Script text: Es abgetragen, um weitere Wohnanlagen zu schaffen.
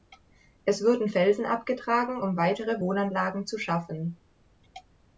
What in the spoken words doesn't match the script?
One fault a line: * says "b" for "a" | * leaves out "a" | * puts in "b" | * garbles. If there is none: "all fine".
* puts in "wurden Felsen"